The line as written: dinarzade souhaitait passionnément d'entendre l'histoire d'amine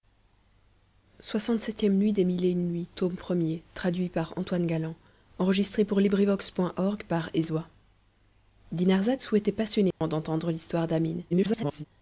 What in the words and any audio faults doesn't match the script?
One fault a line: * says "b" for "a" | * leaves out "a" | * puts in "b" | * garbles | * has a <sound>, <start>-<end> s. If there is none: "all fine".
* has a dropout, 9.9-10.0 s
* garbles